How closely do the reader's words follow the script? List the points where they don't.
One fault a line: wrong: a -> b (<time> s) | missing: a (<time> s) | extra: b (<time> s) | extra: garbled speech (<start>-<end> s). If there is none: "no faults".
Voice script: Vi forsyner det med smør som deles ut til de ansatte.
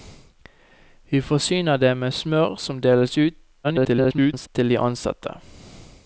extra: garbled speech (3.6-4.5 s)